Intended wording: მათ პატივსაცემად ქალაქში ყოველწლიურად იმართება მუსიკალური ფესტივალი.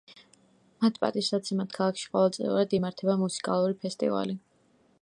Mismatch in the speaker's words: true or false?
false